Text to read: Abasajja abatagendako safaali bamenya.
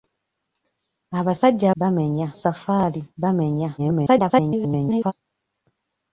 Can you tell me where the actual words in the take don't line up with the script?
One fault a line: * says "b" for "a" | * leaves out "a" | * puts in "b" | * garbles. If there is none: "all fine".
* says "bamenya" for "abatagendako"
* garbles